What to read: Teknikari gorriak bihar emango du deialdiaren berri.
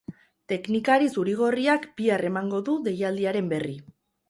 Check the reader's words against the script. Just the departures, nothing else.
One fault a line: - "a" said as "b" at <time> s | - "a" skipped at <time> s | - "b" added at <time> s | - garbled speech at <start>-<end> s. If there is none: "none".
- "zuri" added at 1.2 s